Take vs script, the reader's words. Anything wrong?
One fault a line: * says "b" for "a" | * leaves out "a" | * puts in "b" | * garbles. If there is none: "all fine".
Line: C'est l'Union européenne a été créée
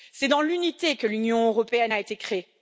* puts in "dans l'unité que"